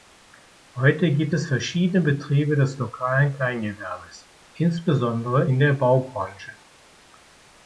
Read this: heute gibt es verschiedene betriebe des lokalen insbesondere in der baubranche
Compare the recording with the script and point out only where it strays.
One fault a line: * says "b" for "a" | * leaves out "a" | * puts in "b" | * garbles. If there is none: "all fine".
* puts in "kleingewerbes"